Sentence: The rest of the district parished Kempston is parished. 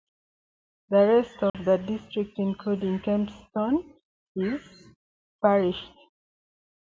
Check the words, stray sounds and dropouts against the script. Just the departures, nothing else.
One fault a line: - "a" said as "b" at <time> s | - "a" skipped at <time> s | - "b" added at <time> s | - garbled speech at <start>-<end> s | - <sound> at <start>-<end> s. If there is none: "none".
- dropout at 1.5-1.5 s
- "parished" said as "including" at 2.4 s